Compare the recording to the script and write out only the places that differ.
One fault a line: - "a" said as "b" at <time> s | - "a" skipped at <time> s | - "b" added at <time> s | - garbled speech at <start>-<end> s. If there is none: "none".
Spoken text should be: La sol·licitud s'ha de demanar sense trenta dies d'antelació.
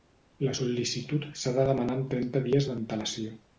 - "sense" said as "amb" at 2.0 s